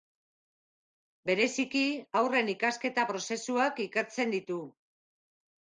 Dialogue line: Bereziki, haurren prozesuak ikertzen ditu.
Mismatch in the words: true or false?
true